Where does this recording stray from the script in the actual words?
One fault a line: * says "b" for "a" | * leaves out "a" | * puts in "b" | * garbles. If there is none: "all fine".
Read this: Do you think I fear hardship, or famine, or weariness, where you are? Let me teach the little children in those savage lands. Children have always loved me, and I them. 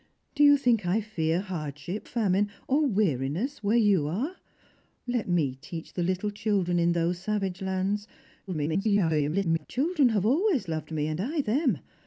* leaves out "or"
* garbles